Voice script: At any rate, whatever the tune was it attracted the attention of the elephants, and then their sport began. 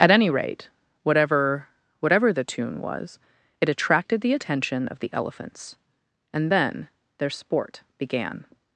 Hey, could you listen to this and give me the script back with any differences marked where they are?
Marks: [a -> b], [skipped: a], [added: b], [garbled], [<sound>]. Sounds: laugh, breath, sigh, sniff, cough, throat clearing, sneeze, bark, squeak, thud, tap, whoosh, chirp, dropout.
At any rate, whatever [added: whatever] the tune was it attracted the attention of the elephants, and then their sport began.